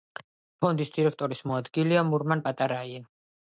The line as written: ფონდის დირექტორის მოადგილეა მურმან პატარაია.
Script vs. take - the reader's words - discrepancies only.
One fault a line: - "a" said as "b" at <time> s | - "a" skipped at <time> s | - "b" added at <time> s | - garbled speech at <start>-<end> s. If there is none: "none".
none